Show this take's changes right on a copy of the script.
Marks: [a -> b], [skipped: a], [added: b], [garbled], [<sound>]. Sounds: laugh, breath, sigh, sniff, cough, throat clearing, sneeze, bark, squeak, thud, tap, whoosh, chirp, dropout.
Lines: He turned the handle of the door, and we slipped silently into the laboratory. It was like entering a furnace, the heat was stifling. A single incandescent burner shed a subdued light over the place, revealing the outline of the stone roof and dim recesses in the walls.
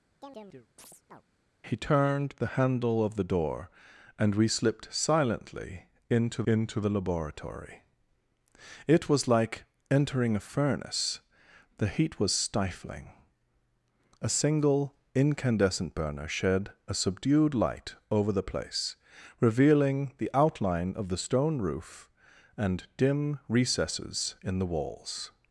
[chirp] He turned the handle of the door, and we slipped silently into [added: into] the laboratory. It was like entering a furnace, the heat was stifling. A single incandescent burner shed a subdued light over the place, revealing the outline of the stone roof and dim recesses in the walls.